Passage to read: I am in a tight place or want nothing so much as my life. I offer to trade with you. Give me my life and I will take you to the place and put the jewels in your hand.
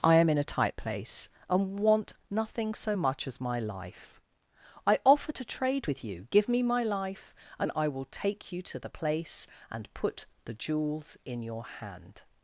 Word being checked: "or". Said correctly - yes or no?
no